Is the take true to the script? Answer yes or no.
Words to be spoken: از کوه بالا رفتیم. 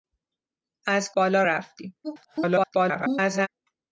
no